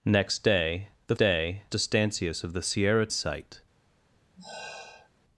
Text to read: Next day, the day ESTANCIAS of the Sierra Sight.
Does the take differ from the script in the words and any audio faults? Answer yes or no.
yes